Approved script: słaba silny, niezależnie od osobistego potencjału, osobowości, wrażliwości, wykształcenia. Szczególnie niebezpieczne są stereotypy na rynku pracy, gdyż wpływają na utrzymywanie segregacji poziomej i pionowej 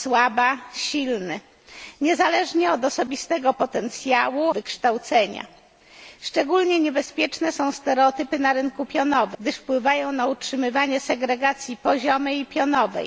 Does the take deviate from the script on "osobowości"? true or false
true